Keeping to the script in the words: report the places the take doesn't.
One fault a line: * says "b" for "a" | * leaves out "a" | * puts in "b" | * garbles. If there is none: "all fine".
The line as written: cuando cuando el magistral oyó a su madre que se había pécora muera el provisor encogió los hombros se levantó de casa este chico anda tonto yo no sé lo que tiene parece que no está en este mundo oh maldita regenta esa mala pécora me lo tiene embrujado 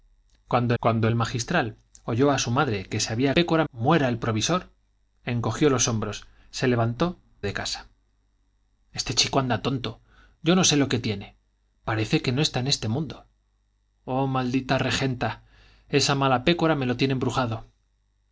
all fine